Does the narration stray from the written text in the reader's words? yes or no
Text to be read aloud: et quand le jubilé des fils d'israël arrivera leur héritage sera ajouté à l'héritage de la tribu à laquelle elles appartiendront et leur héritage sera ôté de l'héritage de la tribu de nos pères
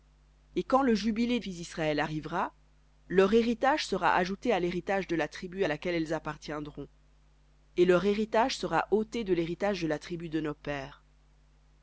yes